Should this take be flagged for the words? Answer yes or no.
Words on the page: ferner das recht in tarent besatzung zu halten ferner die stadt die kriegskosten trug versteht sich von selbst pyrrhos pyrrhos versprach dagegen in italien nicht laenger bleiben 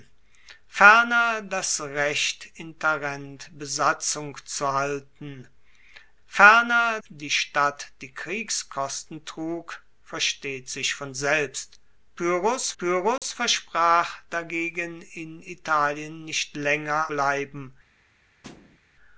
no